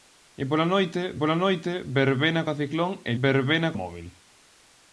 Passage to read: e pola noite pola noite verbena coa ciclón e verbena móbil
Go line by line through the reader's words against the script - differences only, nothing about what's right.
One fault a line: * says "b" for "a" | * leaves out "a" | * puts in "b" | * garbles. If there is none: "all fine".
all fine